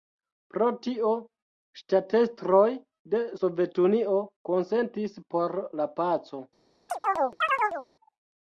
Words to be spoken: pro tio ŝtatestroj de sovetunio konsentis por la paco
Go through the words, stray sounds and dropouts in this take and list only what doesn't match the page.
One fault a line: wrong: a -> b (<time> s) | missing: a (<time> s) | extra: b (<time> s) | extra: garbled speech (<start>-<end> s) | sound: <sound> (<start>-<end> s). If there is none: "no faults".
sound: chirp (6.9-7.9 s)